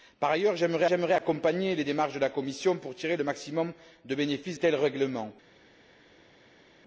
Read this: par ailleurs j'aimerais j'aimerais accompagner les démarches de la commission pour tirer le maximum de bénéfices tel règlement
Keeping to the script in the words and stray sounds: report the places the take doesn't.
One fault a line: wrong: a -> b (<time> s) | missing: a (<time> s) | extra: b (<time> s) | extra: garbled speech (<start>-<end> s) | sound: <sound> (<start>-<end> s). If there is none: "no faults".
no faults